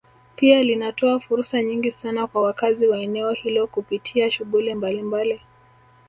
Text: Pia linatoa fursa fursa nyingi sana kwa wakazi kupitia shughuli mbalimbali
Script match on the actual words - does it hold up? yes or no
no